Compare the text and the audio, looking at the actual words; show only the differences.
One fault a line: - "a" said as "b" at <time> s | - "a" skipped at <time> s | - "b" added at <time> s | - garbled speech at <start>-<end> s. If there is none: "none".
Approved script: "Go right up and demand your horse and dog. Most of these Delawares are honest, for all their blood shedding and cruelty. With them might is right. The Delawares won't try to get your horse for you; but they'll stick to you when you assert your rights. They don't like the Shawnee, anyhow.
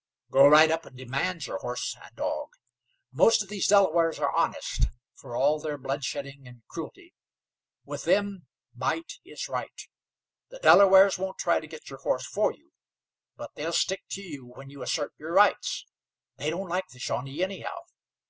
none